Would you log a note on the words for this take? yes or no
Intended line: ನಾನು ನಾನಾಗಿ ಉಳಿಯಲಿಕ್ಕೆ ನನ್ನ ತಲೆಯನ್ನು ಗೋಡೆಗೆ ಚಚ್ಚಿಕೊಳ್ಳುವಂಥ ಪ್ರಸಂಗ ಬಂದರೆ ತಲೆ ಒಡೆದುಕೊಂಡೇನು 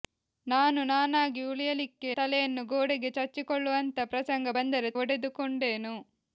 yes